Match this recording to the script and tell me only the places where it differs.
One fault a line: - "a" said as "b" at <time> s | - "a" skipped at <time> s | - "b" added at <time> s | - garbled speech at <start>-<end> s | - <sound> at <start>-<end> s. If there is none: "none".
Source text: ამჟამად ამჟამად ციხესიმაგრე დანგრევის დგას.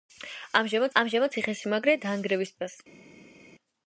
none